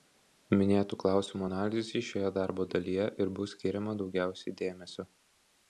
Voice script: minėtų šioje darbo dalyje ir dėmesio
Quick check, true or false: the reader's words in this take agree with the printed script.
false